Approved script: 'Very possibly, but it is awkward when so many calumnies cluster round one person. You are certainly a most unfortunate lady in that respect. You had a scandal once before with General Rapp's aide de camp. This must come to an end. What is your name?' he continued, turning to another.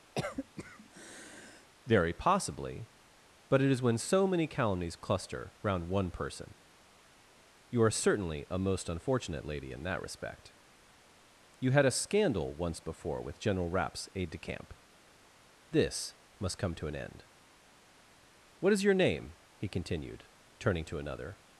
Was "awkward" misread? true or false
true